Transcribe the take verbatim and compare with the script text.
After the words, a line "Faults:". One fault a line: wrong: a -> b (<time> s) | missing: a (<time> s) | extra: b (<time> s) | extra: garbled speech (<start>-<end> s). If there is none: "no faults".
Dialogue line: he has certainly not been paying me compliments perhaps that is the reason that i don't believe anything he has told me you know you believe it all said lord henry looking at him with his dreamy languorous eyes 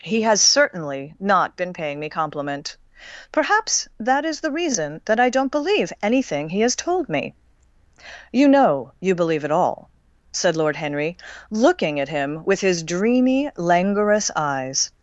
he has certainly not been paying me compliment perhaps that is the reason that i don't believe anything he has told me you know you believe it all said lord henry looking at him with his dreamy languorous eyes
Faults:
wrong: compliments -> compliment (2.1 s)